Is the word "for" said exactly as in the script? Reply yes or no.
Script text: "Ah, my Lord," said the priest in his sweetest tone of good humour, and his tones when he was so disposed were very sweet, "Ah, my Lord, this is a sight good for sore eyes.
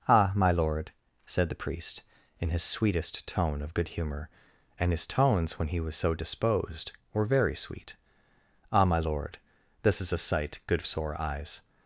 no